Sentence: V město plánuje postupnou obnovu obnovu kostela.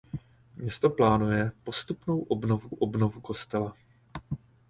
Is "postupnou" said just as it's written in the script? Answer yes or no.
yes